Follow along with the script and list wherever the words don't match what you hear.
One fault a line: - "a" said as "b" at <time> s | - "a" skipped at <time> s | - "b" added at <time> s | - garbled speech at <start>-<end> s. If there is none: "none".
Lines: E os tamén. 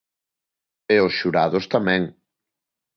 - "xurados" added at 1.2 s